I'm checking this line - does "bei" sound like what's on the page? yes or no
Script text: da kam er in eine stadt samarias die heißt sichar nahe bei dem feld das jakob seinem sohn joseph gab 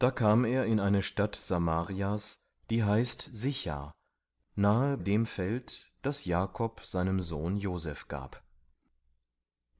no